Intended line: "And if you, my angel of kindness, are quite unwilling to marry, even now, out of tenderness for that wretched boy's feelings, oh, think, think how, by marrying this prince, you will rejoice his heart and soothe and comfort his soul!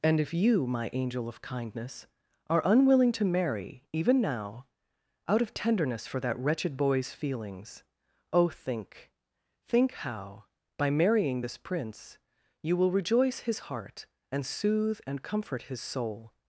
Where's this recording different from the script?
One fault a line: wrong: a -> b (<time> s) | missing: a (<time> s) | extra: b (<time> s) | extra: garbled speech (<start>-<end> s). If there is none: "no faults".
missing: quite (2.6 s)